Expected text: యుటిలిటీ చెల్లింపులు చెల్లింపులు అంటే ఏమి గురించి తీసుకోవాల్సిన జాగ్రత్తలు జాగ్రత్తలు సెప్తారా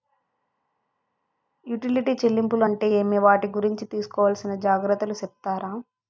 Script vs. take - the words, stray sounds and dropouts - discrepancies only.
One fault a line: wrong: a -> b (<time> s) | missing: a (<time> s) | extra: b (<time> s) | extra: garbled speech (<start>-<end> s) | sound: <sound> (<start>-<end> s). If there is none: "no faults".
missing: చెల్లింపులు (2.6 s)
extra: వాటి (3.2 s)
missing: జాగ్రత్తలు (5.2 s)